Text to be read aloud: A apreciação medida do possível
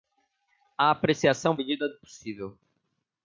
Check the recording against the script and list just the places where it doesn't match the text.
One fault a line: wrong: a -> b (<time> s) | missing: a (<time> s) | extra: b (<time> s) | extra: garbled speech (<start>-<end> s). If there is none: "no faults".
no faults